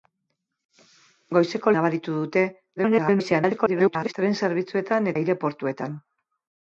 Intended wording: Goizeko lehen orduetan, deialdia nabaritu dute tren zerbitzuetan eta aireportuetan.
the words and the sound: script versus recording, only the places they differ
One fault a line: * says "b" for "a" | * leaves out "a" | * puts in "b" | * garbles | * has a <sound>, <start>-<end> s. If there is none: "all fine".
* leaves out "lehen orduetan deialdia"
* garbles
* leaves out "eta"